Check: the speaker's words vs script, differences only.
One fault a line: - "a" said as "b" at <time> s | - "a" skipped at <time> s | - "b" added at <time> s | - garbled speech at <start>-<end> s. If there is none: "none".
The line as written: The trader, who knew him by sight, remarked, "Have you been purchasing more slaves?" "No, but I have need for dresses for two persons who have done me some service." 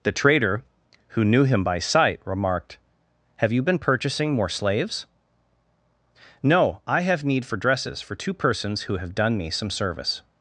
- "but" skipped at 6.8 s